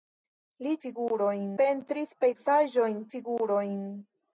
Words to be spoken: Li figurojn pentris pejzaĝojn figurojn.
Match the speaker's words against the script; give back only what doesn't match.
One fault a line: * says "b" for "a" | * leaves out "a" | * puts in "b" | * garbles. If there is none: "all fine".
all fine